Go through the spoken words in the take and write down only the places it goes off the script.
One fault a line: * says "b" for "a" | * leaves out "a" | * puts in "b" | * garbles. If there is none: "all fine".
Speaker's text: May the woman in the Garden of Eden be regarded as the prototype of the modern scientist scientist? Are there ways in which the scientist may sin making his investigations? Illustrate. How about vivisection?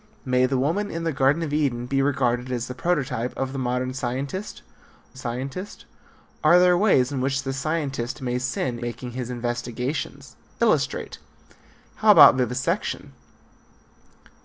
all fine